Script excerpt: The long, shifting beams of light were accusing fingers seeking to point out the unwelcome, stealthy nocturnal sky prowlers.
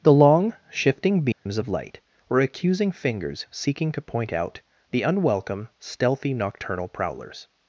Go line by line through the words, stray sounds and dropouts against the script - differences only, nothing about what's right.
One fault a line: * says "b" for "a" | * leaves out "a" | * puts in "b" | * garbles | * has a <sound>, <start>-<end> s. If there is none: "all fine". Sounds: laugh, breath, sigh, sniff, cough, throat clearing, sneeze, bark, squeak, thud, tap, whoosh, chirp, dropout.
* has a dropout, 1.3-1.5 s
* leaves out "sky"